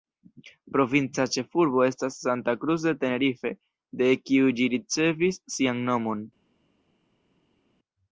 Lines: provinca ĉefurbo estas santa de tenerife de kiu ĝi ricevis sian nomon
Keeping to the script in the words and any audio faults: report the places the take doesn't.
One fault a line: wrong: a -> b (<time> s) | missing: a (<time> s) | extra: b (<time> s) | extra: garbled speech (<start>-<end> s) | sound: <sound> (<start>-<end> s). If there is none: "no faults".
extra: cruz (2.6 s)